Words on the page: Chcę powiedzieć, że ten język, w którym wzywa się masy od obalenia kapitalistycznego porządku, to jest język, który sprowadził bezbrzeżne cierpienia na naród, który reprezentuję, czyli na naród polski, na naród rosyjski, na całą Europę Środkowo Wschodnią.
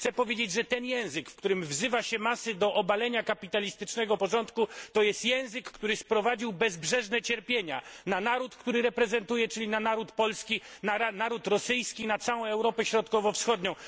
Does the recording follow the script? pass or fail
fail